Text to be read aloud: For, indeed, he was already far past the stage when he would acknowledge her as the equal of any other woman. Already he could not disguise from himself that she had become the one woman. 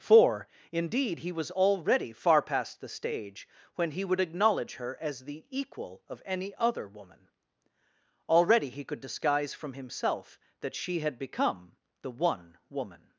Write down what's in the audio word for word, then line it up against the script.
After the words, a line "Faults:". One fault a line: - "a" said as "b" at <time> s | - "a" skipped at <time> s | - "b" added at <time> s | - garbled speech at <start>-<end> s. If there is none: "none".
For, indeed, he was already far past the stage when he would acknowledge her as the equal of any other woman. Already he could disguise from himself that she had become the one woman.
Faults:
- "not" skipped at 9.0 s